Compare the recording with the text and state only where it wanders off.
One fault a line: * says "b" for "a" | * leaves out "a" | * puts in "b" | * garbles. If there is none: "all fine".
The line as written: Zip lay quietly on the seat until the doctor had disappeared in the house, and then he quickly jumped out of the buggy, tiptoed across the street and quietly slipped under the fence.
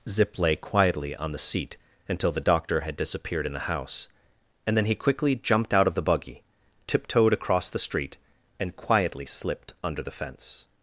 all fine